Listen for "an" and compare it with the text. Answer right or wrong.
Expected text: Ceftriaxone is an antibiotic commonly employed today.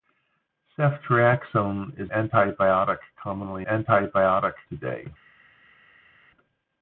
wrong